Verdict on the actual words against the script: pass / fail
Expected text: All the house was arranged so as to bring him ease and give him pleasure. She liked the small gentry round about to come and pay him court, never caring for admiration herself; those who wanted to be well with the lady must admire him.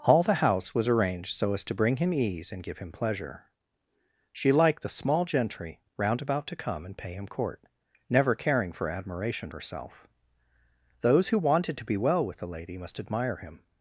pass